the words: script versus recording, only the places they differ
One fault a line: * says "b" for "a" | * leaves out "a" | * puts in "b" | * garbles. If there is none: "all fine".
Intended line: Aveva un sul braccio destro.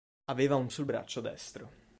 all fine